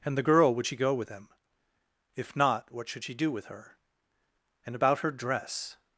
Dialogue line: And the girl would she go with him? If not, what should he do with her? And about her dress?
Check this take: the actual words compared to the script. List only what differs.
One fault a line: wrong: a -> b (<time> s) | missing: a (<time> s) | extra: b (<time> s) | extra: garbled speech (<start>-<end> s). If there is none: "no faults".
wrong: he -> she (3.0 s)